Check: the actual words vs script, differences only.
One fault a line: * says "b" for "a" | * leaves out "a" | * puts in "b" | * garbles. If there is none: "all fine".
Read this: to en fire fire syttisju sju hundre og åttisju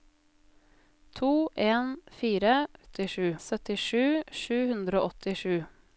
* says "åttisju" for "fire"